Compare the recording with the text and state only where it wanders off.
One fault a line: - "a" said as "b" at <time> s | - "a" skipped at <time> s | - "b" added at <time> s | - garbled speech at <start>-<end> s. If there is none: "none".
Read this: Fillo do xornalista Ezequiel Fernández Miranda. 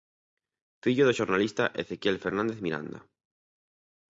none